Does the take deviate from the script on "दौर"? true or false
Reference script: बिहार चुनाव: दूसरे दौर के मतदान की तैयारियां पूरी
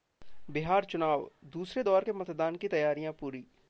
false